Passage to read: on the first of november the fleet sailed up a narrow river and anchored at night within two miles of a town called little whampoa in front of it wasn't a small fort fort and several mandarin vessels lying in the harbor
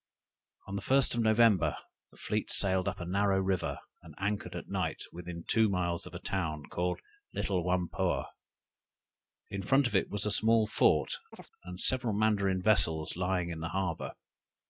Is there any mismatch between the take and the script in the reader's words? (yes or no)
yes